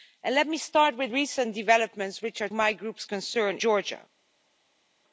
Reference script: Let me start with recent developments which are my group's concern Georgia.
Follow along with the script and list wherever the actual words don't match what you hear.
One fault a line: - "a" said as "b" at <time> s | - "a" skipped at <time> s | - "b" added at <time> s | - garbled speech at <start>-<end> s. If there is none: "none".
none